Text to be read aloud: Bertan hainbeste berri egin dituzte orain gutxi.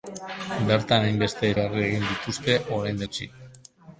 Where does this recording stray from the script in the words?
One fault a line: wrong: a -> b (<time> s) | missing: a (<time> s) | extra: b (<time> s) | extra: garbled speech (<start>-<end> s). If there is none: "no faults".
no faults